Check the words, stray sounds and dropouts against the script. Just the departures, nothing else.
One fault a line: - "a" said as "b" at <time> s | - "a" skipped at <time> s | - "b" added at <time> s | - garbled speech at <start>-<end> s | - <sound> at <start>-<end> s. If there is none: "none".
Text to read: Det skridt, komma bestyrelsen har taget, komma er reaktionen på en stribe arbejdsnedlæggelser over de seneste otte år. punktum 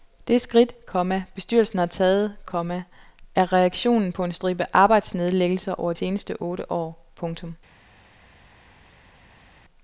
- "de" skipped at 5.9 s